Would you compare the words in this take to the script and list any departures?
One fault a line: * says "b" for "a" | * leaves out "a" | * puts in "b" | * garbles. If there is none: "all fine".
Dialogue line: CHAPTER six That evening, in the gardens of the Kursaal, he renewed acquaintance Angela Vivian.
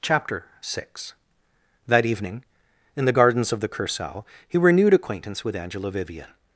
* puts in "with"